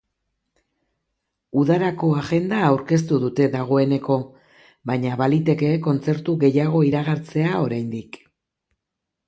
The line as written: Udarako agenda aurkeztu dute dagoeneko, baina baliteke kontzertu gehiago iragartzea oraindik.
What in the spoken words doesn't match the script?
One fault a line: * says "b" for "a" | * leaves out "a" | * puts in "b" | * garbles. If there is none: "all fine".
all fine